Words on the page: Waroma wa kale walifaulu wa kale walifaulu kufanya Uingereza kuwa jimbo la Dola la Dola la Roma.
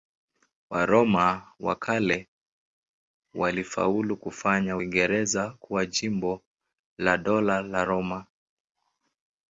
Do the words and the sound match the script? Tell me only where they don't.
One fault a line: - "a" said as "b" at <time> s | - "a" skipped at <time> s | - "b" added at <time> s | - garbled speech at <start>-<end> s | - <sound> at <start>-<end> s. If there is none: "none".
- "wa kale walifaulu" skipped at 4.2 s
- "Dola la" skipped at 7.8 s